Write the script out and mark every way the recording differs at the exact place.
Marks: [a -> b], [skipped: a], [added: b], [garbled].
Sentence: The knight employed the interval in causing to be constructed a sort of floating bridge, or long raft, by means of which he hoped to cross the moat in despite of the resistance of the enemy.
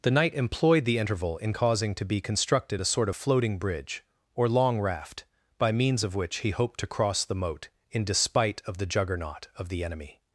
The knight employed the interval in causing to be constructed a sort of floating bridge, or long raft, by means of which he hoped to cross the moat in despite of the [resistance -> juggernaut] of the enemy.